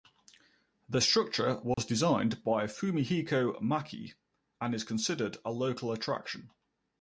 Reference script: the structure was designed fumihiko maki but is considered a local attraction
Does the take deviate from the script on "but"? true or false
true